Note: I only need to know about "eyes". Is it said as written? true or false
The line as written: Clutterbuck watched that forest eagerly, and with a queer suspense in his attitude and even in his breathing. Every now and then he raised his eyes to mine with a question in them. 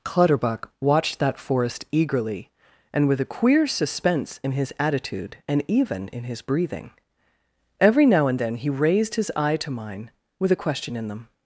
false